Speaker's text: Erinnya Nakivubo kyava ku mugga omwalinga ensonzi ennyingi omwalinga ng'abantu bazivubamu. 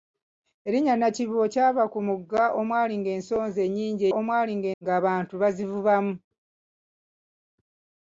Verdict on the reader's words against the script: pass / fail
pass